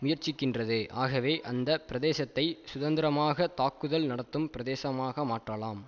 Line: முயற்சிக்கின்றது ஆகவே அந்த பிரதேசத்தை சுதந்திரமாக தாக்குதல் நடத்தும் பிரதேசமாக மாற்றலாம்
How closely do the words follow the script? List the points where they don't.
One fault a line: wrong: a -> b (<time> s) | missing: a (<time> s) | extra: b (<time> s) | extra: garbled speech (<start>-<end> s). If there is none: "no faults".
no faults